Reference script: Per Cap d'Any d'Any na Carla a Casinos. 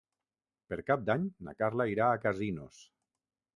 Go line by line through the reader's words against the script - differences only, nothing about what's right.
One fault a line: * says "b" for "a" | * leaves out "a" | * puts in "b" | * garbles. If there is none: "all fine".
* leaves out "d'Any"
* puts in "irà"